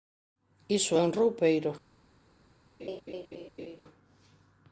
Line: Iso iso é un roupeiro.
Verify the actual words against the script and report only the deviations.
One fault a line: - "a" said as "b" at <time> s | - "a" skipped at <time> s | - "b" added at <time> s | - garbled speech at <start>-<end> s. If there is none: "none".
- "iso" skipped at 0.9 s